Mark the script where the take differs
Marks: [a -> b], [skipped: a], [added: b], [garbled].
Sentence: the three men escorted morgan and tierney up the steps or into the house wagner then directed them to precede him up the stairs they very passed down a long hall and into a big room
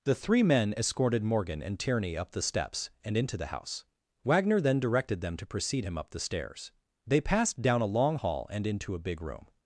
the three men escorted morgan and tierney up the steps [or -> and] into the house wagner then directed them to precede him up the stairs they [skipped: very] passed down a long hall and into a big room